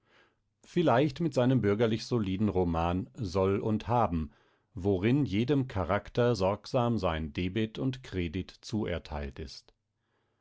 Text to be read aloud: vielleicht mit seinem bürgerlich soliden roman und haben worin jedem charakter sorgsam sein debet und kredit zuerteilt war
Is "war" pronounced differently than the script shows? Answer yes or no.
yes